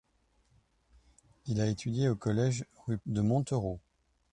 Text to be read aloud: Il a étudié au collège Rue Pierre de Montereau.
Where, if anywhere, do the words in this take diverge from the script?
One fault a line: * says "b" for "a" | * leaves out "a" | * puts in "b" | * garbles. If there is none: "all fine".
* leaves out "Pierre"